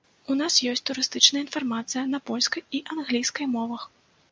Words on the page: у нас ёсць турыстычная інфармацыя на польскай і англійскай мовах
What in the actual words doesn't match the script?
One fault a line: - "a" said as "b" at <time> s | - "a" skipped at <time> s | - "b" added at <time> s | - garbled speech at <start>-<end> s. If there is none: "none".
none